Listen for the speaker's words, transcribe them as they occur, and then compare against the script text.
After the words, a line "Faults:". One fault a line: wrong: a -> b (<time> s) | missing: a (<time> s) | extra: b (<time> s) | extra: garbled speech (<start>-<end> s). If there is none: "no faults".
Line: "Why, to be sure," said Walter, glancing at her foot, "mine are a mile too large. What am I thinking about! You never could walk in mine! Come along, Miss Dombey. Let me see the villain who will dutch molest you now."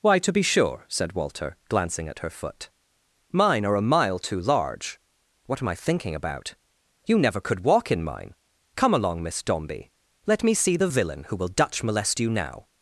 "Why, to be sure," said Walter, glancing at her foot, "mine are a mile too large. What am I thinking about! You never could walk in mine! Come along, Miss Dombey. Let me see the villain who will dutch molest you now."
Faults:
no faults